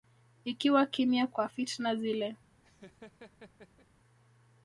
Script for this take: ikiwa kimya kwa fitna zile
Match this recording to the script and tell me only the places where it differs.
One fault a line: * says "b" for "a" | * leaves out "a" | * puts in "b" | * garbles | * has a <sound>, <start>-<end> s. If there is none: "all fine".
* has a laugh, 2.6-3.9 s